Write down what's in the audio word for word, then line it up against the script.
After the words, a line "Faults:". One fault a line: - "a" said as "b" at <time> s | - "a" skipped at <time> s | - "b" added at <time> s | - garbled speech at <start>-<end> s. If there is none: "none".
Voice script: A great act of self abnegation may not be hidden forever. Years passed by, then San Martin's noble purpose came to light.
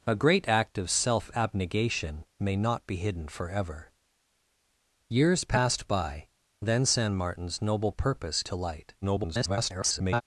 A great act of self abnegation may not be hidden forever. Years passed by, then San Martin's noble purpose to light. [garbled]
Faults:
- "came" skipped at 8.4 s
- garbled speech at 9.0-10.2 s